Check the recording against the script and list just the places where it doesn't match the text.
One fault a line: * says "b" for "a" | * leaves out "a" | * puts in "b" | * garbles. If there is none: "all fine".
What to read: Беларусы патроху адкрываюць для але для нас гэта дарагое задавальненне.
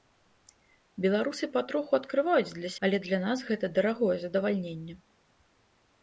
all fine